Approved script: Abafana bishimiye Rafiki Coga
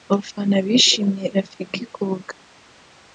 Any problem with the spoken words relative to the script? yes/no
no